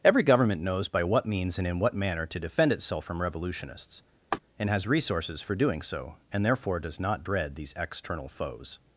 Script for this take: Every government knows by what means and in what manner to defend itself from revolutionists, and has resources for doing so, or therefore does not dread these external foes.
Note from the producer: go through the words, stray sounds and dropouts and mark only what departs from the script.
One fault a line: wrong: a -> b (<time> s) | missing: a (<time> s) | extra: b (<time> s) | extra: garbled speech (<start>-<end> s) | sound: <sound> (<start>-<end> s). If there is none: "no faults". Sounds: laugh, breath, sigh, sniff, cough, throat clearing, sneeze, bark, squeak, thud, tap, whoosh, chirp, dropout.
sound: laugh (4.3-4.4 s)
wrong: or -> and (6.3 s)